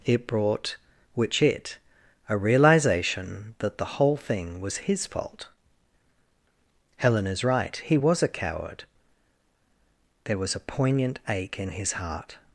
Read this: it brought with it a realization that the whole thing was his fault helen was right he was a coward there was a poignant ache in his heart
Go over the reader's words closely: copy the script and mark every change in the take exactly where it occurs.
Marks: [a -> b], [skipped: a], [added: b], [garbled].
it brought [with -> which] it a realization that the whole thing was his fault helen [was -> is] right he was a coward there was a poignant ache in his heart